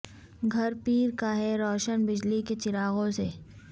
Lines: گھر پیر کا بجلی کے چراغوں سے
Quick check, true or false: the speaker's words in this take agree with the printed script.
false